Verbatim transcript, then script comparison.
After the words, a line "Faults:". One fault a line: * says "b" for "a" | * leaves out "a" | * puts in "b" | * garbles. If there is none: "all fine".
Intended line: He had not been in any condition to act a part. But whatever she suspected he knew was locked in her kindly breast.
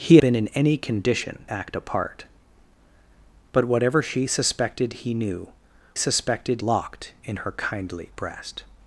He been in any condition act a part. But whatever she suspected he knew suspected locked in her kindly breast.
Faults:
* leaves out "had not"
* leaves out "to"
* says "suspected" for "was"